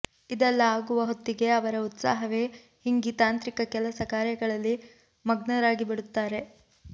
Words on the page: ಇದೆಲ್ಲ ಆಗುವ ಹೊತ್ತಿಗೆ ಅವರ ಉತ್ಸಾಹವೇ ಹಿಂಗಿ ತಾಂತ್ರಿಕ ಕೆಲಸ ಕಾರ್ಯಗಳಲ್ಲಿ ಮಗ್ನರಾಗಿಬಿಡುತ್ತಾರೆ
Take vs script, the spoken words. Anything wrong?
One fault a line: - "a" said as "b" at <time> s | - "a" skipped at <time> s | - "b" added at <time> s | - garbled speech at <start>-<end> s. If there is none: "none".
none